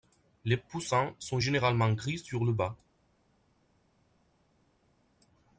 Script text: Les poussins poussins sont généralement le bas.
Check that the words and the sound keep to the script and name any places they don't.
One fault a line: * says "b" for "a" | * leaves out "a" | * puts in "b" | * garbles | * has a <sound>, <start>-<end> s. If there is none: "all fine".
* leaves out "poussins"
* puts in "gris sur"